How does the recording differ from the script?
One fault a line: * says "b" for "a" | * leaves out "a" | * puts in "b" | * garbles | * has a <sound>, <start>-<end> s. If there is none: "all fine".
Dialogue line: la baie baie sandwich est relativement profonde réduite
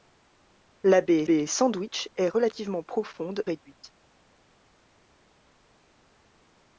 all fine